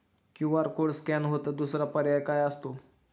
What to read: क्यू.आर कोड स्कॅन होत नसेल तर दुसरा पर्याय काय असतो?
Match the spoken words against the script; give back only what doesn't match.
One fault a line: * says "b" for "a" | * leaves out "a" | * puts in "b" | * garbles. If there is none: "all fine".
* leaves out "नसेल"